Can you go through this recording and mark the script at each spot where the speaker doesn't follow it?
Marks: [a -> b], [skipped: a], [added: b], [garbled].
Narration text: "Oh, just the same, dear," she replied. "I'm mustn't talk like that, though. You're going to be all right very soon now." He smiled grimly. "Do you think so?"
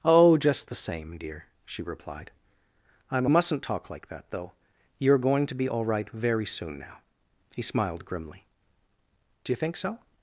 "Oh, just the same, dear," she replied. "I'm mustn't talk like that, though. You're going to be all right very soon now." He smiled grimly. "Do you think so?"